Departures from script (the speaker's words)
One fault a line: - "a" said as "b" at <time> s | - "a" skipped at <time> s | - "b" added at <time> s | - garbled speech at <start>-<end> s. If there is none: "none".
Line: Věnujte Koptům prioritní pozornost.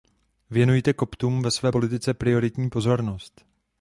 - "ve své politice" added at 1.4 s